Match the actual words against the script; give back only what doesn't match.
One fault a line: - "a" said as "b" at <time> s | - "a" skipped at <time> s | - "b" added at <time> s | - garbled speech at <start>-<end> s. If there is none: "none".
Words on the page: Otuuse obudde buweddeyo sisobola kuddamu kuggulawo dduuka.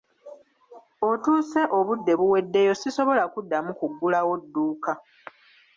none